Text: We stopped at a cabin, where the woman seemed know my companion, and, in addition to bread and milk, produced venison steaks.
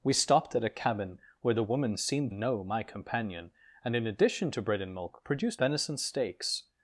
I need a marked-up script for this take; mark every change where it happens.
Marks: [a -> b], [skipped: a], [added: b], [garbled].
We stopped at a cabin, where the woman seemed know my companion, and, in addition to bread and milk, produced venison steaks.